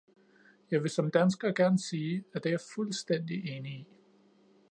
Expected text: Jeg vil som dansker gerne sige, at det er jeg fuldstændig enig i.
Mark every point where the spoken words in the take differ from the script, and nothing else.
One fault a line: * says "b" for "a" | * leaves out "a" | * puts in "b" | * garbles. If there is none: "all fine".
all fine